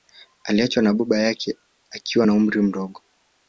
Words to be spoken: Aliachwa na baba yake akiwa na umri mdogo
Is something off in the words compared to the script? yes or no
no